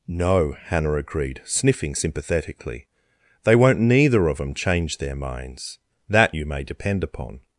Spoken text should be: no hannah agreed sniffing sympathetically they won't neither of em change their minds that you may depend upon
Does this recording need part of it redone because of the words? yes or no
no